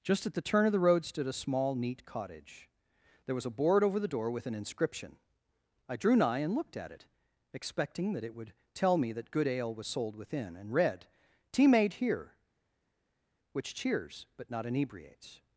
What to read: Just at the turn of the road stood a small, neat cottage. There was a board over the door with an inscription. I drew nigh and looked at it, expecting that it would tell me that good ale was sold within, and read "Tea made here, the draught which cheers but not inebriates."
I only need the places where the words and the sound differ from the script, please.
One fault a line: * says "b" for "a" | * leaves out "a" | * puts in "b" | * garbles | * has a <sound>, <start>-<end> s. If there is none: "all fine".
* leaves out "the draught"